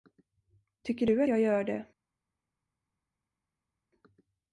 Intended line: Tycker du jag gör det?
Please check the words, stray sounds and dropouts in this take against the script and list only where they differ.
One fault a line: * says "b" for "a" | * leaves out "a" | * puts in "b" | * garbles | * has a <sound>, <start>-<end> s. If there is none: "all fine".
all fine